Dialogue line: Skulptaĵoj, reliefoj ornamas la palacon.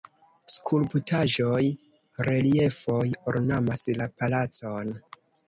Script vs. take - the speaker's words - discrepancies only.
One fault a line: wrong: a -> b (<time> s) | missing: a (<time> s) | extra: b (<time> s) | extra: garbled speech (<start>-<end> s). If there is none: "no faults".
no faults